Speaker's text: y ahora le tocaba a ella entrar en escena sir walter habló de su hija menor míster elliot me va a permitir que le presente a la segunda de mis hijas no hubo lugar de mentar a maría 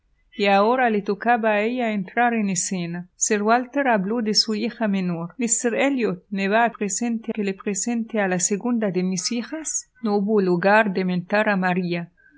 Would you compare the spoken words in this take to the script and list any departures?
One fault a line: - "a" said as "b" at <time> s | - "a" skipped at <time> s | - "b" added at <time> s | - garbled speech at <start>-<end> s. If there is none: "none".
- "permitir" said as "presente" at 6.7 s